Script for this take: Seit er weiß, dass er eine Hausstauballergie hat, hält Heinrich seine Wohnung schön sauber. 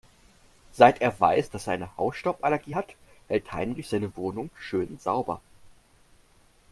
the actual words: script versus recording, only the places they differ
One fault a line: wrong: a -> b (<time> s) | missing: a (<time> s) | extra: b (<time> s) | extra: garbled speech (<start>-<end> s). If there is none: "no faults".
no faults